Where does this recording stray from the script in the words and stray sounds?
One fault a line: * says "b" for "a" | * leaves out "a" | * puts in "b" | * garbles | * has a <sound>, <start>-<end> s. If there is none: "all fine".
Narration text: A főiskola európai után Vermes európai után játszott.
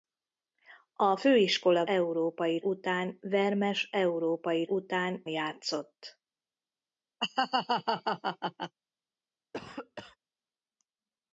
* has a laugh, 7.2-8.7 s
* has a cough, 9.5-10.2 s